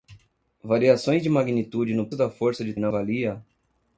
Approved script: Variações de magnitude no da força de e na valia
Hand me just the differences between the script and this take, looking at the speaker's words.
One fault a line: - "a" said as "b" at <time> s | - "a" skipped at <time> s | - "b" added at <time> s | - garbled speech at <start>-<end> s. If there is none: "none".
none